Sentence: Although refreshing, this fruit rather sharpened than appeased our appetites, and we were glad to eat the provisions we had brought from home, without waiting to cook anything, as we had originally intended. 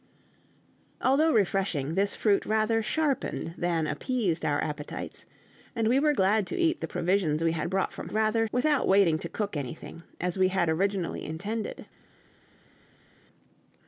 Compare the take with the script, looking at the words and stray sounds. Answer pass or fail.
fail